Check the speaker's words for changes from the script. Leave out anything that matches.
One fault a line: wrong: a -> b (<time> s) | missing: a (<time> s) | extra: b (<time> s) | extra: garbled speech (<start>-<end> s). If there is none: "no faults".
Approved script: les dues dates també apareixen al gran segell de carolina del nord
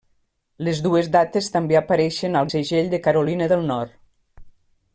missing: gran (2.5 s)